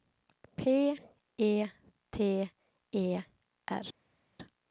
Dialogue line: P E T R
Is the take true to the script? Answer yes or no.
no